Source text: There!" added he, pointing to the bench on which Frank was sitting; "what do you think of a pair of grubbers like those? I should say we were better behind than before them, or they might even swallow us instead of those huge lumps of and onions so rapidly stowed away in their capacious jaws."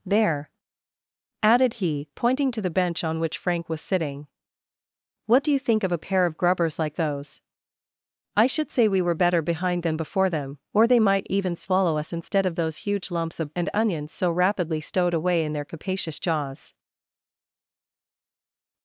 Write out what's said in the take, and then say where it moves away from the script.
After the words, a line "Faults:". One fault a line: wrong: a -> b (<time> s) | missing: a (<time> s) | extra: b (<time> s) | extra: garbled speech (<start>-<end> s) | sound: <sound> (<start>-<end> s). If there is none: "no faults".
There!" added he, pointing to the bench on which Frank was sitting; "what do you think of a pair of grubbers like those? I should say we were better behind than before them, or they might even swallow us instead of those huge lumps of and onions so rapidly stowed away in their capacious jaws."
Faults:
no faults